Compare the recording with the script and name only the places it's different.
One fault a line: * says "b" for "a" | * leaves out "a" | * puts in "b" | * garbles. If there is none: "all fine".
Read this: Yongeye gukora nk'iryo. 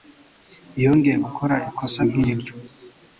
* puts in "ikosa"